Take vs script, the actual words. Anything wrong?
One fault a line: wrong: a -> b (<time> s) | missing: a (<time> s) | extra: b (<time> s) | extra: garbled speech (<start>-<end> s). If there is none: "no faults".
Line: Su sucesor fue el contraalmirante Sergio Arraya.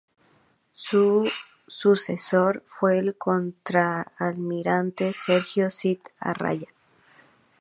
extra: Cid (5.7 s)